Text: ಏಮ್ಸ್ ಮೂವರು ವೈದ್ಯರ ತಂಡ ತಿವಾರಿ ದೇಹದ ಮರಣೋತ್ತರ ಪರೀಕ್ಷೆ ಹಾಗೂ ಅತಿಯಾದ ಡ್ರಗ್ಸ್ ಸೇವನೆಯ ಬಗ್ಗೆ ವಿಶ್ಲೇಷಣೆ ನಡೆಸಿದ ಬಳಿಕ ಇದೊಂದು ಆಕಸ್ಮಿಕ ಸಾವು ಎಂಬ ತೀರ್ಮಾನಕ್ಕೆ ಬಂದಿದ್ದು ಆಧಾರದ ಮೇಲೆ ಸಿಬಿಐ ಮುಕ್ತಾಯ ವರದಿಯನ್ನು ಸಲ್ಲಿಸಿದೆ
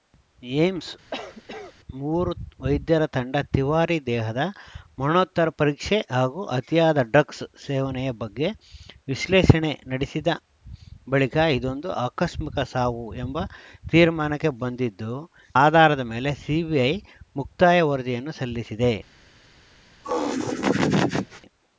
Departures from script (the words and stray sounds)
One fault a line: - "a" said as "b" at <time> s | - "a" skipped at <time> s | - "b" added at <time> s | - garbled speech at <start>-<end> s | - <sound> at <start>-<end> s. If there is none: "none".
- cough at 1.1-1.7 s
- laugh at 20.0-21.4 s